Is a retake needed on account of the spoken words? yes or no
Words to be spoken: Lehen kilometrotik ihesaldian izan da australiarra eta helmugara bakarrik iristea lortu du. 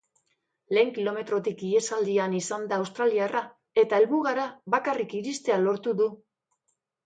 no